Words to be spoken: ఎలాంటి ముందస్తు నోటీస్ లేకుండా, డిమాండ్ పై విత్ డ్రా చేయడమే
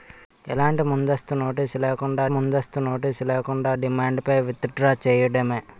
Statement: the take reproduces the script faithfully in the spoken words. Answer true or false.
false